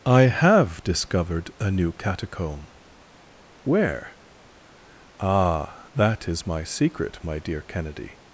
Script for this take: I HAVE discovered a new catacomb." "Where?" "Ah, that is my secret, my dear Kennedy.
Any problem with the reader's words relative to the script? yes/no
no